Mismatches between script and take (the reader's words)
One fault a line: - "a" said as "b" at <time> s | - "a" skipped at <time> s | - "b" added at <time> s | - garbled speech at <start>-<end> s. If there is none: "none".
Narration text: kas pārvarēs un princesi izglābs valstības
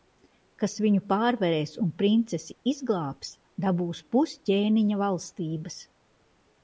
- "viņu" added at 0.8 s
- "dabūs pus ķēniņa" added at 3.7 s